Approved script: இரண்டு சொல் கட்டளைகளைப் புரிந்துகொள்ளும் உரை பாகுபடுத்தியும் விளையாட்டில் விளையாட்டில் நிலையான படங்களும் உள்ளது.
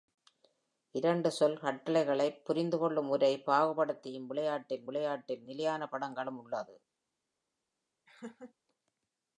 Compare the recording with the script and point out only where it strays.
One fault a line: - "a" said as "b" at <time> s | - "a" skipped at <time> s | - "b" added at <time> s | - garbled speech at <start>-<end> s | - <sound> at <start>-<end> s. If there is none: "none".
- laugh at 8.1-8.5 s